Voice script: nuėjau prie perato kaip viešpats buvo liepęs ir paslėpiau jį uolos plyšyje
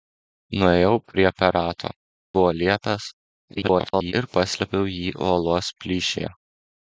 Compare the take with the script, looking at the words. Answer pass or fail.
fail